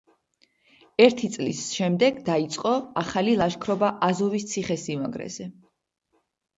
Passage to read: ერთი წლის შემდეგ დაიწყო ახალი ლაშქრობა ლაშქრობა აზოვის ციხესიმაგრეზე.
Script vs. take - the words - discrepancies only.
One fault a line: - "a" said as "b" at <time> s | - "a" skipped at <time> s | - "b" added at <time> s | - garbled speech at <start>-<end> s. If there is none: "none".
- "ლაშქრობა" skipped at 3.9 s